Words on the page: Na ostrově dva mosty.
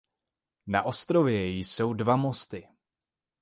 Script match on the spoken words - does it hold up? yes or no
no